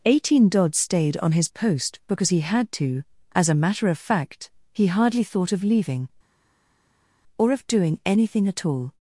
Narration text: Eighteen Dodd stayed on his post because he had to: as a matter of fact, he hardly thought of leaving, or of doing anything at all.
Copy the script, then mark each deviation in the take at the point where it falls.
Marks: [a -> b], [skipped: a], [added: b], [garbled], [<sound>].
Eighteen Dodd stayed on his post because he had to: as a matter of fact, he hardly thought of leaving, or of doing anything at all.